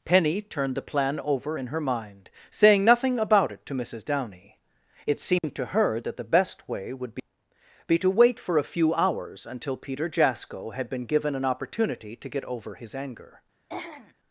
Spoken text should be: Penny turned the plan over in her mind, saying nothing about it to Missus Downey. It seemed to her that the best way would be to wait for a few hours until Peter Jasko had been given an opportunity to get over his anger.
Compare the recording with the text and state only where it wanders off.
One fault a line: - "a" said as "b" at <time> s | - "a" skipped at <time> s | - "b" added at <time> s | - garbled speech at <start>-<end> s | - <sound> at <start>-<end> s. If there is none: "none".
- "be" added at 7.9 s
- throat clearing at 13.7-14.1 s